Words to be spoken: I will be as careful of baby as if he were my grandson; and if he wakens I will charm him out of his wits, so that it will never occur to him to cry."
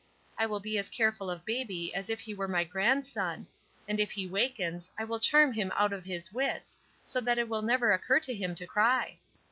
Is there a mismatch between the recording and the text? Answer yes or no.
no